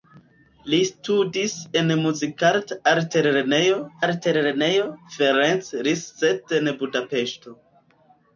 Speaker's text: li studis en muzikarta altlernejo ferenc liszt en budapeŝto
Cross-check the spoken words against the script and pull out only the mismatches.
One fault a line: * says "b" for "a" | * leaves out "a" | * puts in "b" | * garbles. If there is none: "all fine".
* puts in "altlernejo"